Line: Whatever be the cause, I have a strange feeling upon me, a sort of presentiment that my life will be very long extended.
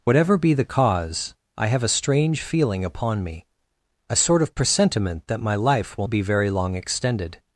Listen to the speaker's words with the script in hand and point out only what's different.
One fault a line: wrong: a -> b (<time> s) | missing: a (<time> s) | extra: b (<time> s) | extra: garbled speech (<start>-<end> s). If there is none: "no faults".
no faults